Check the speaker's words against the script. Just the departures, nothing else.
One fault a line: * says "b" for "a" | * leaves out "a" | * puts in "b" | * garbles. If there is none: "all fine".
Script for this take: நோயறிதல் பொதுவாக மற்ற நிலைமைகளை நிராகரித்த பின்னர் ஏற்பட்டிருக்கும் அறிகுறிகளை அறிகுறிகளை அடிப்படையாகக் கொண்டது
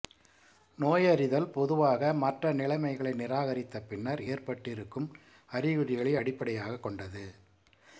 * leaves out "அறிகுறிகளை"